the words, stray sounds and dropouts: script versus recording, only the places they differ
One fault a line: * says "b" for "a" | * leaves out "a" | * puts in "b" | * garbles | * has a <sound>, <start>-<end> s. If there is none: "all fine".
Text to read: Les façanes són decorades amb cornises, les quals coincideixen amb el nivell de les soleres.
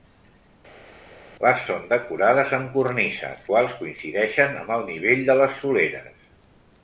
* leaves out "façanes"
* leaves out "les"